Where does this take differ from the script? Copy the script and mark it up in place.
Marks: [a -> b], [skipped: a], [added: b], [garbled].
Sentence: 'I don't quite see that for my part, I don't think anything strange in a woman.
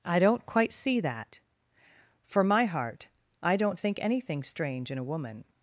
'I don't quite see that for my [part, -> heart] I don't think anything strange in a woman.